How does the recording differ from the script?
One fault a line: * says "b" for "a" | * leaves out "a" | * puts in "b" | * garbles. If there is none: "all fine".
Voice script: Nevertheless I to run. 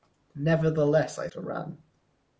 all fine